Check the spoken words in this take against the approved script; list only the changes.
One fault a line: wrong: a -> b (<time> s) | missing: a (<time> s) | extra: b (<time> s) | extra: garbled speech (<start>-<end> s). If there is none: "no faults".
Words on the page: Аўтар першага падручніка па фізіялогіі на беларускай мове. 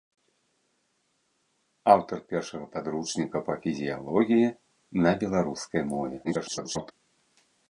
extra: garbled speech (6.2-6.9 s)